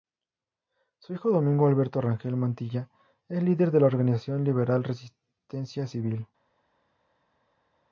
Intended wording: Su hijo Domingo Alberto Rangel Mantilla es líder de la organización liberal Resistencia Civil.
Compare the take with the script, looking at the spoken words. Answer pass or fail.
pass